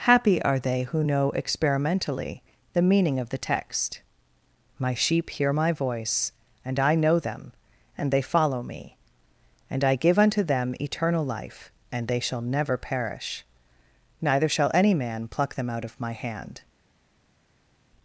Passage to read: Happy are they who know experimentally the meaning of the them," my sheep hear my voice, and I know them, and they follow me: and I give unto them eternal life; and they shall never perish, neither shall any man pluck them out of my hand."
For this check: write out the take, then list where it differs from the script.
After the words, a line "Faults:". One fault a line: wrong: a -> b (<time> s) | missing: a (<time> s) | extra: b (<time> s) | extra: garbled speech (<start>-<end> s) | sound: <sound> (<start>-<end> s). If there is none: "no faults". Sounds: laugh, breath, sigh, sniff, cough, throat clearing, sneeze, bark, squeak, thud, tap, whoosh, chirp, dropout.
Happy are they who know experimentally the meaning of the text," my sheep hear my voice, and I know them, and they follow me: and I give unto them eternal life; and they shall never perish, neither shall any man pluck them out of my hand."
Faults:
wrong: them -> text (3.4 s)